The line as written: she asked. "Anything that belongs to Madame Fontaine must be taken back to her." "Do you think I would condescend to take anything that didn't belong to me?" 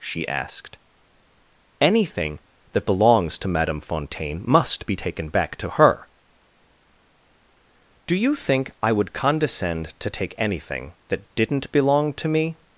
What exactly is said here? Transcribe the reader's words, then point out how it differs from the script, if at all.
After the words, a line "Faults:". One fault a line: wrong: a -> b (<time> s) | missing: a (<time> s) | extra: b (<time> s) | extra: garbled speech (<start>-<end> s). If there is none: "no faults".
she asked. "Anything that belongs to Madame Fontaine must be taken back to her." "Do you think I would condescend to take anything that didn't belong to me?"
Faults:
no faults